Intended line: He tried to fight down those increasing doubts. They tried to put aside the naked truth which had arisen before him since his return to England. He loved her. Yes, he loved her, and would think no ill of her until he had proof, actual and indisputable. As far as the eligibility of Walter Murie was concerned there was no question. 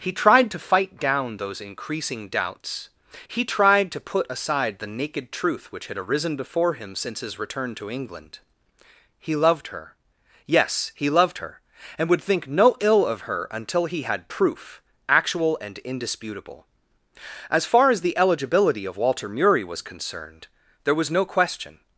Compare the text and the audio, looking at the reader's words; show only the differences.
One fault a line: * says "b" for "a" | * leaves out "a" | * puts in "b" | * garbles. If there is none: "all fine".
* says "He" for "They"